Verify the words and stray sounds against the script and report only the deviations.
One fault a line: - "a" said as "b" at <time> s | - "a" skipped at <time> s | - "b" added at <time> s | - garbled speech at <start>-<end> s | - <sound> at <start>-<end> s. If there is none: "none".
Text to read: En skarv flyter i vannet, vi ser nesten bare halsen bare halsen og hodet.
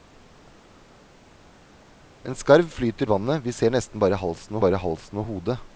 none